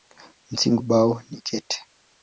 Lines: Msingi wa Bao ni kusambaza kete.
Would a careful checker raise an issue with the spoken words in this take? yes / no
yes